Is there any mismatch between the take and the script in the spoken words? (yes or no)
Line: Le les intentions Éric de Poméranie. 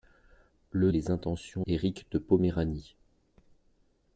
no